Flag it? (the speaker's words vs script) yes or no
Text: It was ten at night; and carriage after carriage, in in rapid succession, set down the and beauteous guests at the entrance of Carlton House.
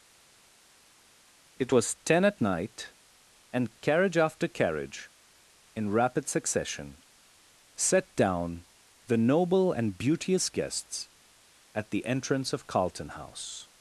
yes